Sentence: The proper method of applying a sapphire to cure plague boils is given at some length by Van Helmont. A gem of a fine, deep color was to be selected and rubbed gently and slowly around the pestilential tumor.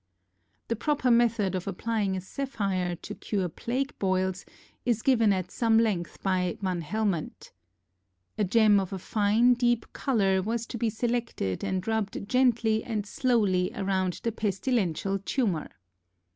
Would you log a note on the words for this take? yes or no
no